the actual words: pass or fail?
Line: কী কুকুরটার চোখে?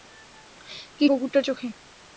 pass